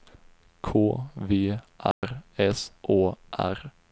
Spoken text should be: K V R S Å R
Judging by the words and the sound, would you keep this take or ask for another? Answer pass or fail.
fail